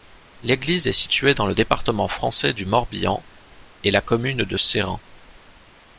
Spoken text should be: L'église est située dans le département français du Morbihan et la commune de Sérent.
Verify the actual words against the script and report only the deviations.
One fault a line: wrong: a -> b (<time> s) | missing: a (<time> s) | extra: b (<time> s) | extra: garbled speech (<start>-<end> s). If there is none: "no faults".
no faults